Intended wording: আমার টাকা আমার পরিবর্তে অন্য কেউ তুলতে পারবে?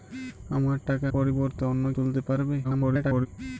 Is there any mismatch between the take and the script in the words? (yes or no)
yes